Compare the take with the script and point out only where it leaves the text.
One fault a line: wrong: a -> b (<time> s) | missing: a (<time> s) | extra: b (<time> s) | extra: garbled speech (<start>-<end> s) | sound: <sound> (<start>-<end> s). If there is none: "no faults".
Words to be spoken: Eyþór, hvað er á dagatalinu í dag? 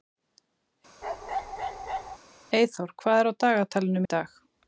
sound: bark (1.0-2.2 s)